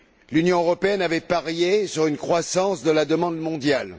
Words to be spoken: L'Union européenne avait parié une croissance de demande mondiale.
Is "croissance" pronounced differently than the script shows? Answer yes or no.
no